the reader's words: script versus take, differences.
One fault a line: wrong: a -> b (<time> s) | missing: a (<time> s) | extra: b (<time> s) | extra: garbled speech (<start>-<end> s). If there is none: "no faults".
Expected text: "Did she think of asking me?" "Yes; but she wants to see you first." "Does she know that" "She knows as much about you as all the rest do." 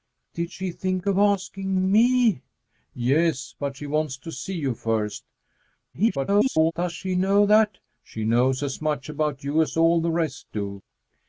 extra: garbled speech (5.9-6.7 s)